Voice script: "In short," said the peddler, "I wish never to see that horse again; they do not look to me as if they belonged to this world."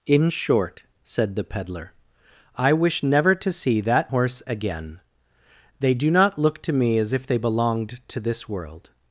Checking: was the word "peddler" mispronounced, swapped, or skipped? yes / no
no